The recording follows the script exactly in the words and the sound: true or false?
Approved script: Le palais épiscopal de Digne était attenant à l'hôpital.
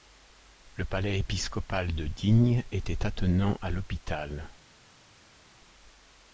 true